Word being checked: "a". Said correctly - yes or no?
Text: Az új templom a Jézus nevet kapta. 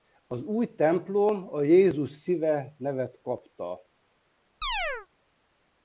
yes